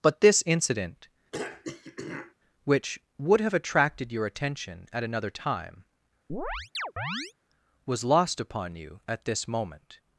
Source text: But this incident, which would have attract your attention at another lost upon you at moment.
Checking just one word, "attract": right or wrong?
wrong